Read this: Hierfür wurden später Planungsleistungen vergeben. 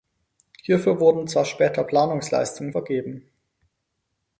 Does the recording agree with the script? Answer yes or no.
no